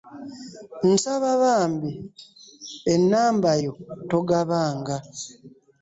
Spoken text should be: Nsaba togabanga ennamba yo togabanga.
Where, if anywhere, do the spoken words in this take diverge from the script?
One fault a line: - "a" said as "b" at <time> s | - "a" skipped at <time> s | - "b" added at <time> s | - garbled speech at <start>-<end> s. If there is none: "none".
- "togabanga" said as "bambi" at 1.4 s